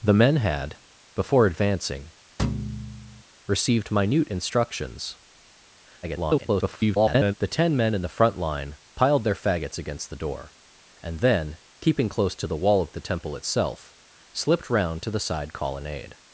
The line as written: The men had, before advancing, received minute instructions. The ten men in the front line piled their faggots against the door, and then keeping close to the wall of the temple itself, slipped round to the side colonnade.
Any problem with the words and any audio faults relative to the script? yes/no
yes